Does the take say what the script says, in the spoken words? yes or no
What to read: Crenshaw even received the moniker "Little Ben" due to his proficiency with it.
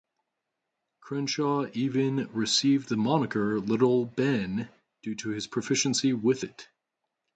yes